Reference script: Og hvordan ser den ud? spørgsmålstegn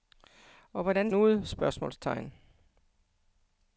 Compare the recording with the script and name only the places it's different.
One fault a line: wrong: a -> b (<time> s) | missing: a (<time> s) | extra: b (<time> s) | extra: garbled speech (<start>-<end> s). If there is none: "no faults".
missing: ser den (1.1 s)